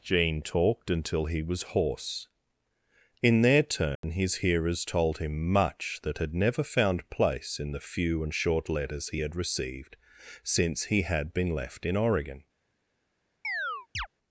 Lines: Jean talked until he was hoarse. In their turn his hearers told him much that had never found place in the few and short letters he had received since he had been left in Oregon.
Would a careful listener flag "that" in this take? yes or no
no